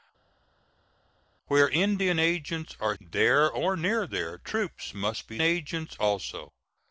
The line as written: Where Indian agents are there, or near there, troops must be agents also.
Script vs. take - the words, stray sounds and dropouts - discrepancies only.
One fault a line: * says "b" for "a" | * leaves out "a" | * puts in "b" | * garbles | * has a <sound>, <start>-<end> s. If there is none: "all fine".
all fine